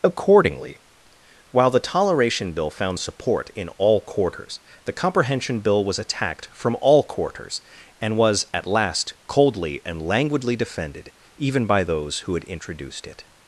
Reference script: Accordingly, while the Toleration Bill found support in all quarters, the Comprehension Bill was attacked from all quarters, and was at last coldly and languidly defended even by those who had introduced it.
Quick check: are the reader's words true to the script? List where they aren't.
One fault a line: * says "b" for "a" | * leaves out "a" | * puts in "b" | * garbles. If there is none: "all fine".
all fine